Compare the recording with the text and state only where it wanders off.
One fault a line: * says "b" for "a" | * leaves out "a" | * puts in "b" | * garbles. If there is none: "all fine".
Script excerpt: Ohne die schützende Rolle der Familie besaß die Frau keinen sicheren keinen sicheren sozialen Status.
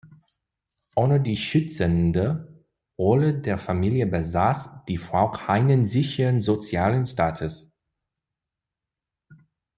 * leaves out "keinen sicheren"